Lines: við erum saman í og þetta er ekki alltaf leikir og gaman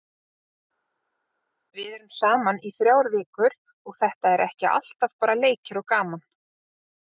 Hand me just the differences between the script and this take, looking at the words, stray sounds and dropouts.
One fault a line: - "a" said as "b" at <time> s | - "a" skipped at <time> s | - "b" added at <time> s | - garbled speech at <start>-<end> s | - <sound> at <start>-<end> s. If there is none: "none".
- "þrjár vikur" added at 2.8 s
- "bara" added at 5.2 s